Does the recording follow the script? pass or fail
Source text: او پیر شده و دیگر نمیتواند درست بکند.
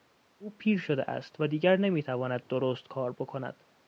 fail